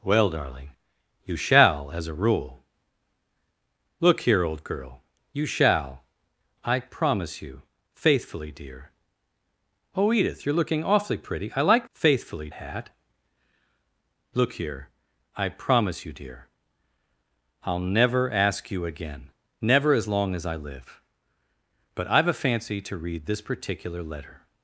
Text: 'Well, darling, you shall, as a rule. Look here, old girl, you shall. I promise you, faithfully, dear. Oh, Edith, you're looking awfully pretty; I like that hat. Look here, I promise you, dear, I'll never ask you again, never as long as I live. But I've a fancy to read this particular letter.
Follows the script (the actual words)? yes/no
no